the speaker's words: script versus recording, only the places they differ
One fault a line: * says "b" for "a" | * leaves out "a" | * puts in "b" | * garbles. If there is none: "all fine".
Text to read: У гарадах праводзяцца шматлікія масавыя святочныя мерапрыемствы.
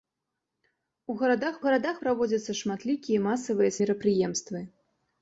* puts in "гарадах"
* leaves out "святочныя"